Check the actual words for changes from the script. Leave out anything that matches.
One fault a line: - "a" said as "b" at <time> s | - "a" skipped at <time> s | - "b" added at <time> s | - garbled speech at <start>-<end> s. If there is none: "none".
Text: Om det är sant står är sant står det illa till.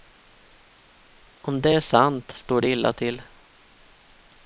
- "är sant står" skipped at 2.6 s